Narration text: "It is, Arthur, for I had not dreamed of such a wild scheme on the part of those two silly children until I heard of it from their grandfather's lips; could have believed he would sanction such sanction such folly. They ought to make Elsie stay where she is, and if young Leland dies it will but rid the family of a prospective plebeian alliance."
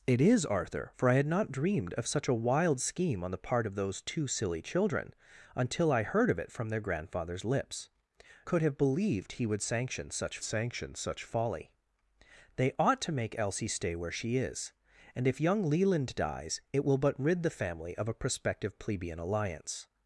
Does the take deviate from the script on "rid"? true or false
false